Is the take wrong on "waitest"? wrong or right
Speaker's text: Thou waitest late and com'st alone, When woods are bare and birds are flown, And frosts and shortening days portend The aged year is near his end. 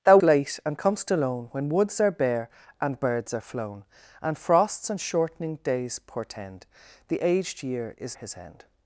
wrong